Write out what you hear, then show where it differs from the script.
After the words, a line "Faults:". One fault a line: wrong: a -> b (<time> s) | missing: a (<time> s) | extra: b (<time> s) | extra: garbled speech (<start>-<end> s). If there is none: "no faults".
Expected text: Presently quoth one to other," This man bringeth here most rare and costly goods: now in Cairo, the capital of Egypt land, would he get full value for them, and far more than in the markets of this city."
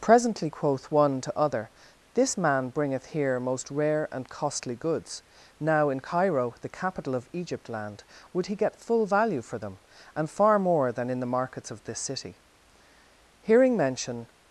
Presently quoth one to other," This man bringeth here most rare and costly goods: now in Cairo, the capital of Egypt land, would he get full value for them, and far more than in the markets of this city." Hearing mention
Faults:
extra: Hearing mention (13.4 s)